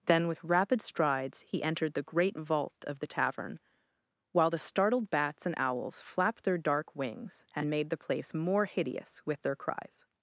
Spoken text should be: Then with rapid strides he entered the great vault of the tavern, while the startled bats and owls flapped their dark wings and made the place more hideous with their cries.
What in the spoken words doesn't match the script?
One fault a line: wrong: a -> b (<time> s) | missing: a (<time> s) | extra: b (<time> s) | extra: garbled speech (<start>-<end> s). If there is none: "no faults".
no faults